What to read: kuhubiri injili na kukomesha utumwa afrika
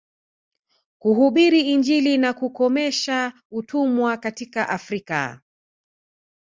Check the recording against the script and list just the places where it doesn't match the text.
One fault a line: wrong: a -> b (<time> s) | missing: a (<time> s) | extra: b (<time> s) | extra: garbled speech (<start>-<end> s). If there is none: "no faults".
extra: katika (4.2 s)